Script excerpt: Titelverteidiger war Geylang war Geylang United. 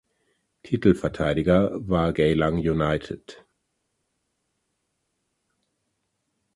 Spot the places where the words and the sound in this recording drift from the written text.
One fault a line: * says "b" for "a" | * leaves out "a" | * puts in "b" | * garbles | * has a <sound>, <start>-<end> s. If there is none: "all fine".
* leaves out "war Geylang"